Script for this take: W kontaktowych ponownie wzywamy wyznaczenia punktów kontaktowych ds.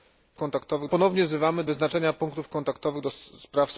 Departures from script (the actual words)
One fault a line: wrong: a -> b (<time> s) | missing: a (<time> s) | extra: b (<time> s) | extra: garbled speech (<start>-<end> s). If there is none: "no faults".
no faults